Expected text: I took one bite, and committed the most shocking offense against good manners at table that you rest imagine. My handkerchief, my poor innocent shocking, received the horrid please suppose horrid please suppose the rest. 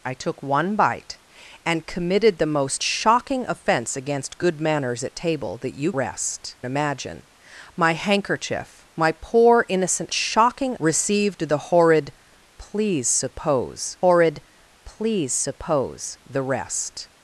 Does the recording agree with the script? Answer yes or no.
yes